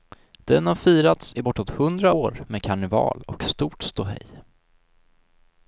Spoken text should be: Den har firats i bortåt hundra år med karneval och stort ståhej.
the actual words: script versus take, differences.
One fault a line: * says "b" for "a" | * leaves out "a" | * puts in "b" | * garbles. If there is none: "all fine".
all fine